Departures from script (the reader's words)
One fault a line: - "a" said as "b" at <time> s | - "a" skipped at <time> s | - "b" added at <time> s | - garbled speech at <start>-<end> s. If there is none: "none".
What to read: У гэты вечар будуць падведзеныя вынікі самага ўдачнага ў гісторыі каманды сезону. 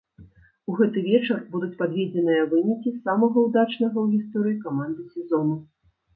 none